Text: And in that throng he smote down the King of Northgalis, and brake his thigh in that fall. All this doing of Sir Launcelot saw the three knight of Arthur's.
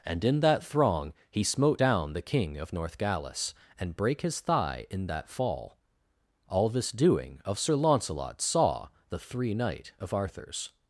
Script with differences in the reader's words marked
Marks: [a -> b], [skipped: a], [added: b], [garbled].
And in that throng he smote down the King of Northgalis, and brake his thigh in that fall. All this doing of Sir Launcelot saw the three knight of Arthur's.